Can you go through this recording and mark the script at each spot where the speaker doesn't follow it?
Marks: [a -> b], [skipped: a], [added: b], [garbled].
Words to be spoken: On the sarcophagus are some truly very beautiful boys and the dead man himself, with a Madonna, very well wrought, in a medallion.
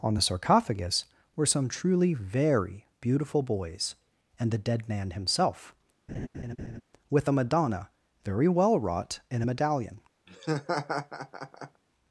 On the sarcophagus [are -> were] some truly very beautiful boys and the dead man himself, with a Madonna, very well wrought, in a medallion.